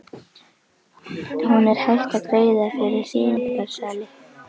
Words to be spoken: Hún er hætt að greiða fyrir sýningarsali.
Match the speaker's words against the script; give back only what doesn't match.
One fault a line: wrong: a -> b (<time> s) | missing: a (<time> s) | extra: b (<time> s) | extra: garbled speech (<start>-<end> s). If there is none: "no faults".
no faults